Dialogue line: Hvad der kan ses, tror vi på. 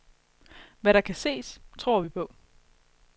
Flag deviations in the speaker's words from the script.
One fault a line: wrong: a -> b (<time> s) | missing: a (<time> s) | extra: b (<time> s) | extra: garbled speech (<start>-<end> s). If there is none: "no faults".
no faults